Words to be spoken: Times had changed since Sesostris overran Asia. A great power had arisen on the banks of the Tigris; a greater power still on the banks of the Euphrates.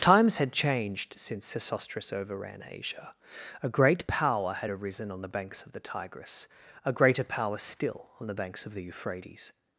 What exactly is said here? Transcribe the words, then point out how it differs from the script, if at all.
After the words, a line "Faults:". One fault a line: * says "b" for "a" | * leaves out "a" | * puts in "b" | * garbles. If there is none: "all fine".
Times had changed since Sesostris overran Asia. A great power had arisen on the banks of the Tigris; a greater power still on the banks of the Euphrates.
Faults:
all fine